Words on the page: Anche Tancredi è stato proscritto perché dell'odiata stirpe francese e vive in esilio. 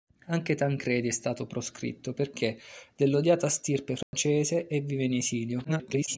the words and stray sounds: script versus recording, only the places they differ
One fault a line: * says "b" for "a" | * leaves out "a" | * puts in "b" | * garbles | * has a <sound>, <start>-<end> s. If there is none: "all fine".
* has a dropout, 4.0-4.1 s
* garbles